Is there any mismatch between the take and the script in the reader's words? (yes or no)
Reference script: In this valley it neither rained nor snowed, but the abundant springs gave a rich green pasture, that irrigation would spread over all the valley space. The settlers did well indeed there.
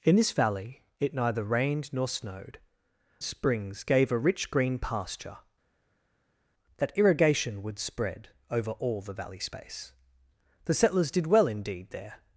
yes